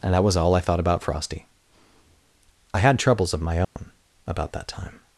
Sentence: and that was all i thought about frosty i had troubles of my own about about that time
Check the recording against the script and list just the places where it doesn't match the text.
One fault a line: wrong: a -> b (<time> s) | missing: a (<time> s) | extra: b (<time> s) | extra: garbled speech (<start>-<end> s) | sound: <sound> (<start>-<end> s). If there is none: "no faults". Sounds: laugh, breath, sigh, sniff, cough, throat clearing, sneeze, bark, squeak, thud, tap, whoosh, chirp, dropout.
sound: dropout (3.6-3.8 s)
missing: about (4.5 s)